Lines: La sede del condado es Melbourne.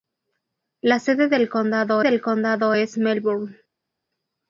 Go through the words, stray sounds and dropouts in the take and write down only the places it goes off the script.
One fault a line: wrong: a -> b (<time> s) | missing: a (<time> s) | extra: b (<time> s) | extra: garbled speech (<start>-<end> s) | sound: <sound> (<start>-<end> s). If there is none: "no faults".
extra: del condado (2.0 s)